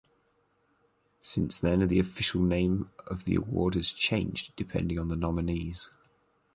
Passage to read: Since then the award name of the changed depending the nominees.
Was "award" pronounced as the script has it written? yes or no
no